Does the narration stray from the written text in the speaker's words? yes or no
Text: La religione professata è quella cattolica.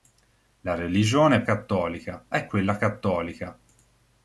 yes